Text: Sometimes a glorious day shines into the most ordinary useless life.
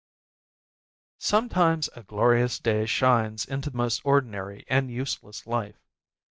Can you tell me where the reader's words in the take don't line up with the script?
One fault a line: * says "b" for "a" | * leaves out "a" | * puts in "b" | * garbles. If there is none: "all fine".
* puts in "and"